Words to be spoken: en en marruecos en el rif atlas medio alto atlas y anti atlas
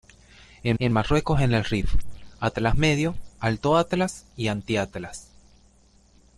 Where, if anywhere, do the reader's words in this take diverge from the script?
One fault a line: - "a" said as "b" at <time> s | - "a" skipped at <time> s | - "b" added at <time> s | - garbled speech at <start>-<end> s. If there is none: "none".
none